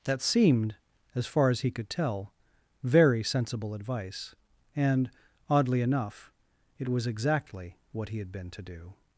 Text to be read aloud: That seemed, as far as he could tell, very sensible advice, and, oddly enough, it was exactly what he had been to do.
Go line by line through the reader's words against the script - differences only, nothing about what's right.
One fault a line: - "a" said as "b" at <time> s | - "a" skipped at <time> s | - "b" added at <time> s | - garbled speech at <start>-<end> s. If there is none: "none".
none